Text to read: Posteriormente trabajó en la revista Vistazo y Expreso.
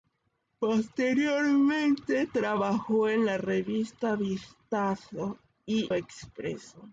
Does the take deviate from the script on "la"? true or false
false